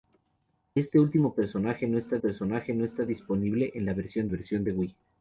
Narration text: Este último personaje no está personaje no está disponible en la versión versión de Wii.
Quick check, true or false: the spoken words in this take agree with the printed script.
true